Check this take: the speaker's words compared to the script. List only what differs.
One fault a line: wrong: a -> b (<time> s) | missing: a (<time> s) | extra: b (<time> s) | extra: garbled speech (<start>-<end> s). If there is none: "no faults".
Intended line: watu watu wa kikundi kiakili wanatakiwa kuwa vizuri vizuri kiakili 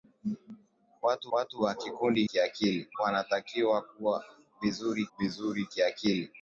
no faults